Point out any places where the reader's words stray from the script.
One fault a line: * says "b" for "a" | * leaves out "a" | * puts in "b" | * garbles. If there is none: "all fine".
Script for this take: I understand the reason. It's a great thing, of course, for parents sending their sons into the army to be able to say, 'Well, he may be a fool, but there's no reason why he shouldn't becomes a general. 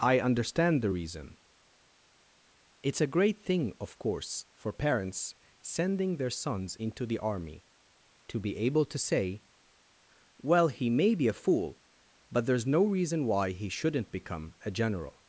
* says "become" for "becomes"